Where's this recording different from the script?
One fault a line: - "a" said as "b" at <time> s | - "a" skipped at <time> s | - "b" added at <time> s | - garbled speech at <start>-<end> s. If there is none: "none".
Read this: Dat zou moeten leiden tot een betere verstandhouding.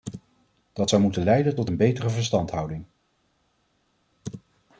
none